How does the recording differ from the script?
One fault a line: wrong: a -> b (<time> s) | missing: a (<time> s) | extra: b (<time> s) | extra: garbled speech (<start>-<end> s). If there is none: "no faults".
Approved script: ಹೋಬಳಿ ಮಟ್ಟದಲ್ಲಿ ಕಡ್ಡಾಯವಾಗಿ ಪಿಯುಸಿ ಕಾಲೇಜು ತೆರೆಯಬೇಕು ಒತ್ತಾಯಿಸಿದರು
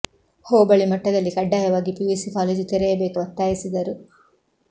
no faults